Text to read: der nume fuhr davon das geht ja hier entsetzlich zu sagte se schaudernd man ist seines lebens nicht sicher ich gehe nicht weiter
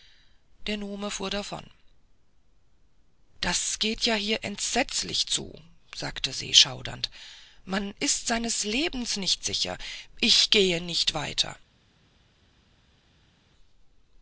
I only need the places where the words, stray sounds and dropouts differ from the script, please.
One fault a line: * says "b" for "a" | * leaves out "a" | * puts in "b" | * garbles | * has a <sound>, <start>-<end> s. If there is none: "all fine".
all fine